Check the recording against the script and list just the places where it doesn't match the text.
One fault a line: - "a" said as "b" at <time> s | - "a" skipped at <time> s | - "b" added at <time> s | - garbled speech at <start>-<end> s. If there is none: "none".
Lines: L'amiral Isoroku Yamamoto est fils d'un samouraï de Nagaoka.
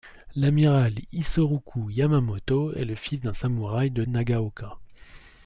- "le" added at 2.8 s